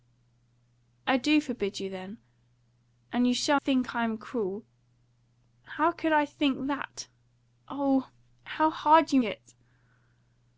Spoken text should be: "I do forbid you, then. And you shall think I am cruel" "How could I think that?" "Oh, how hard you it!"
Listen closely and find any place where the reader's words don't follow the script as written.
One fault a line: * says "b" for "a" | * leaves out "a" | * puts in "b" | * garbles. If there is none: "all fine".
all fine